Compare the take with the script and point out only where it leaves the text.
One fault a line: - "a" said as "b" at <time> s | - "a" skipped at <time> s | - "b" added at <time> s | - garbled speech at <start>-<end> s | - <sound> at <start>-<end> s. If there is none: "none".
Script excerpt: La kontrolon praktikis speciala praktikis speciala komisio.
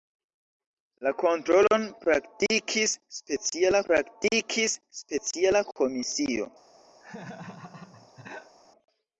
- laugh at 7.0-8.6 s